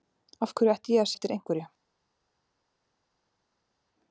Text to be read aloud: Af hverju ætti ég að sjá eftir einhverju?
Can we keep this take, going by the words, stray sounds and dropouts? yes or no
no